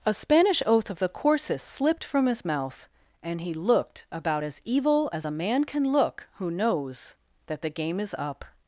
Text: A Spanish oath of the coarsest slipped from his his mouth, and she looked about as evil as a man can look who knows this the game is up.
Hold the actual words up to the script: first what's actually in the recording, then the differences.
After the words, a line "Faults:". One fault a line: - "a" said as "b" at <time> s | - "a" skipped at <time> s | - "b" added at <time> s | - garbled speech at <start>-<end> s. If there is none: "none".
A Spanish oath of the coarsest slipped from his mouth, and he looked about as evil as a man can look who knows that the game is up.
Faults:
- "his" skipped at 2.4 s
- "she" said as "he" at 3.4 s
- "this" said as "that" at 7.5 s